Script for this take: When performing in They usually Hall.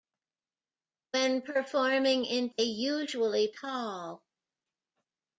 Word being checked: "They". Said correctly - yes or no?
yes